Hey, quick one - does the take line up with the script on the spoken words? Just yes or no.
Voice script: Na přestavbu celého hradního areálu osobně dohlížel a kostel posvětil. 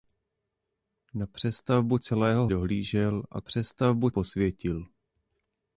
no